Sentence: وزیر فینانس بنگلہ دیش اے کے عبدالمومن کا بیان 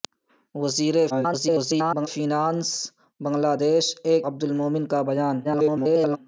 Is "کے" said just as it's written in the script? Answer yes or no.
no